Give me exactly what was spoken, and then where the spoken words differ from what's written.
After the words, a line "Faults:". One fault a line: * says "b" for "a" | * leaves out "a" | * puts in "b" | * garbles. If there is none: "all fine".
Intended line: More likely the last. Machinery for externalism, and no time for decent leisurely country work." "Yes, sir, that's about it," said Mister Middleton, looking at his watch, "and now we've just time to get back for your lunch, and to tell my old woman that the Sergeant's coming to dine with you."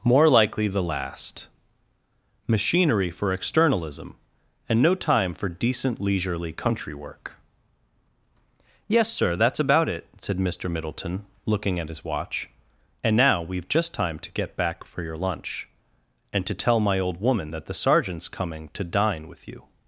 More likely the last. Machinery for externalism, and no time for decent leisurely country work." "Yes, sir, that's about it," said Mister Middleton, looking at his watch, "and now we've just time to get back for your lunch, and to tell my old woman that the Sergeant's coming to dine with you."
Faults:
all fine